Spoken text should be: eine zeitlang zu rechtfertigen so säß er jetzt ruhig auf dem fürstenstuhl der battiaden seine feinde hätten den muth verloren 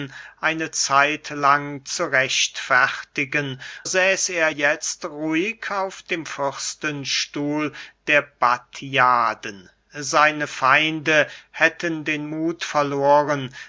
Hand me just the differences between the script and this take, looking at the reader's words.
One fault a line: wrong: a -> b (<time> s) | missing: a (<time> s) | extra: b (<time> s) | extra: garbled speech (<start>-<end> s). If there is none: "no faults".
missing: so (3.6 s)